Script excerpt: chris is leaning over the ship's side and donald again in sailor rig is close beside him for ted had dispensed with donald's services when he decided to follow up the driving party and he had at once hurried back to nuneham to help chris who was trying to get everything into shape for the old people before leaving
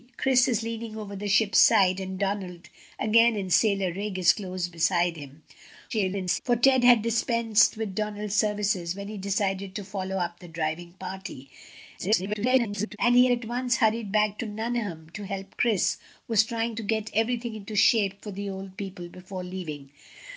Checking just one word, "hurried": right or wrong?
right